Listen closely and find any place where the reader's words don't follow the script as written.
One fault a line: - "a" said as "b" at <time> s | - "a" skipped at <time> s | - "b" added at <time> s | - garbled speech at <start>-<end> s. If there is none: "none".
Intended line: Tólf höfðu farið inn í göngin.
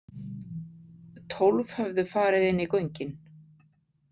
none